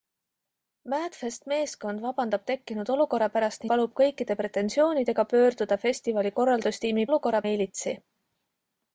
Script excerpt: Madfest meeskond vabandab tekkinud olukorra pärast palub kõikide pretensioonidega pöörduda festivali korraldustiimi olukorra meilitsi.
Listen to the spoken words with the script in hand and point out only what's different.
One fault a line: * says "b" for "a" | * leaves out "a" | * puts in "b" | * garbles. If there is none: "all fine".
all fine